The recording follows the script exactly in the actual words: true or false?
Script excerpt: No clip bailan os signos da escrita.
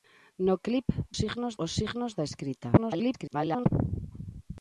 false